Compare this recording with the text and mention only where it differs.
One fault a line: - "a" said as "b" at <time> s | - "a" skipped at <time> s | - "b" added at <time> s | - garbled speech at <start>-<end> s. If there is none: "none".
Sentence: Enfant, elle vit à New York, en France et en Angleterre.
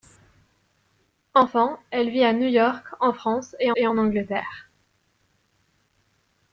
- "et" added at 3.7 s